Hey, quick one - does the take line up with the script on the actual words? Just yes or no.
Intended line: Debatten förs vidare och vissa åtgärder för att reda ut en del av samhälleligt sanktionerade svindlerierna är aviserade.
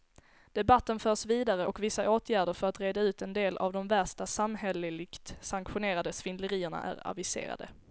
no